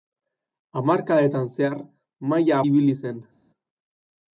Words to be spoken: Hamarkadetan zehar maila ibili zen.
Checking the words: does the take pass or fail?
pass